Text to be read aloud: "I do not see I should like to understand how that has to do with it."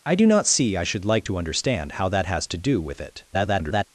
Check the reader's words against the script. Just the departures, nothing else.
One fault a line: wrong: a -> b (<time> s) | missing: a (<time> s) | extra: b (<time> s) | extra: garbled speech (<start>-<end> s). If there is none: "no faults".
extra: garbled speech (3.3-3.8 s)